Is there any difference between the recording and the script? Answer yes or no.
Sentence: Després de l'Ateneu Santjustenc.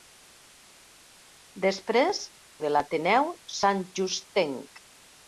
no